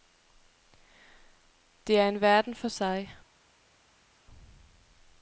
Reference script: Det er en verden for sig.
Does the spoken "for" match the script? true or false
true